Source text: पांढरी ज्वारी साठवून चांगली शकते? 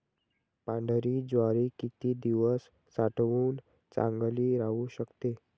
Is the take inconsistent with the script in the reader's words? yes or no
yes